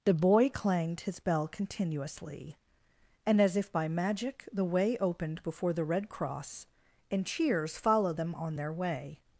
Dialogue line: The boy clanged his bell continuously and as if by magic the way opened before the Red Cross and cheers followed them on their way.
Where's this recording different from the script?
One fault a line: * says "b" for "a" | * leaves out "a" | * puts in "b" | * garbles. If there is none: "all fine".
all fine